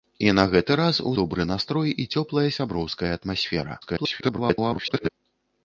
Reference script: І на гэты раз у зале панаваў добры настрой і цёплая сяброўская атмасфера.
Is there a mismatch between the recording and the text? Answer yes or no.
yes